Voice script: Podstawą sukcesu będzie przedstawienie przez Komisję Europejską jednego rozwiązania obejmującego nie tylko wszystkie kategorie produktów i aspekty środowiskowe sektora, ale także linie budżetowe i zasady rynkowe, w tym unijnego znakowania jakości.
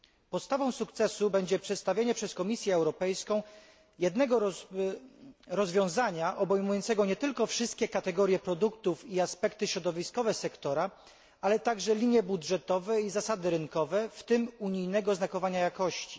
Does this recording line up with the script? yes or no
yes